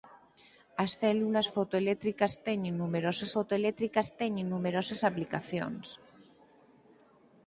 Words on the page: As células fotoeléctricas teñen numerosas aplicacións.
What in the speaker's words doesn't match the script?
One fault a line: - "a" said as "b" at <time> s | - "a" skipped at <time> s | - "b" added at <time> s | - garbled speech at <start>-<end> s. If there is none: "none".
- "fotoeléctricas teñen numerosas" added at 3.3 s